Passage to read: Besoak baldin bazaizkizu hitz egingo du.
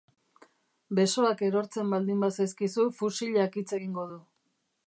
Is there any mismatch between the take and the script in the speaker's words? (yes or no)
yes